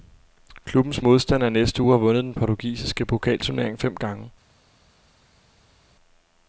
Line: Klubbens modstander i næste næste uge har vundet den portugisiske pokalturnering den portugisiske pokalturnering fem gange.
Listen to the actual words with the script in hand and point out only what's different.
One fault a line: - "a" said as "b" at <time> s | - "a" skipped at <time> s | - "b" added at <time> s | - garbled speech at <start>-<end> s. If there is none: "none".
- "næste" skipped at 1.8 s
- "den portugisiske pokalturnering" skipped at 3.8 s